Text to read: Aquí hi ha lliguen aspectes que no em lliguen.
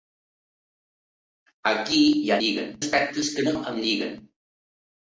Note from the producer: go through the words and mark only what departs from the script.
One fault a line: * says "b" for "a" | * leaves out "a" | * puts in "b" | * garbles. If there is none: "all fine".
all fine